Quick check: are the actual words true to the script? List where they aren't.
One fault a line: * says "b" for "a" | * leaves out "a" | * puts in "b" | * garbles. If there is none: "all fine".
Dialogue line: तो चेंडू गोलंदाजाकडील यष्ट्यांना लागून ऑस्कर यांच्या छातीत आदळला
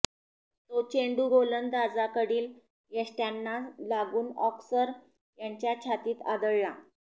all fine